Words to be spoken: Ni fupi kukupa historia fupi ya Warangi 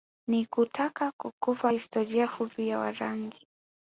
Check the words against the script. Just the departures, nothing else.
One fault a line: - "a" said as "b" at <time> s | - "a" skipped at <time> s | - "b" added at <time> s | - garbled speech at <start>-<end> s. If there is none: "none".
- "fupi" said as "kutaka" at 0.4 s